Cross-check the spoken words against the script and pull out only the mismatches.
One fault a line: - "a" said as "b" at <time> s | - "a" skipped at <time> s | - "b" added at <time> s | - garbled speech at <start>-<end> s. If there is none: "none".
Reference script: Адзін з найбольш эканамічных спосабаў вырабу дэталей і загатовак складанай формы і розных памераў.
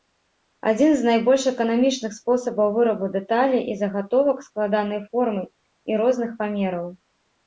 none